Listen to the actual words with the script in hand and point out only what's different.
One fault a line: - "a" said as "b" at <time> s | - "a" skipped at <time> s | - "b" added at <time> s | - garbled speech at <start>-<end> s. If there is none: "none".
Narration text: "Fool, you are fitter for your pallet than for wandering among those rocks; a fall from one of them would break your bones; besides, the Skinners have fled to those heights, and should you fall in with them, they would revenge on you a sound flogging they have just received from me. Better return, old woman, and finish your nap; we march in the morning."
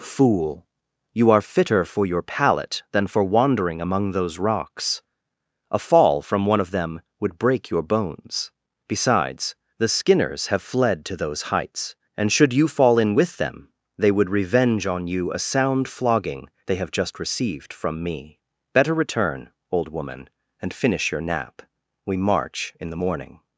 none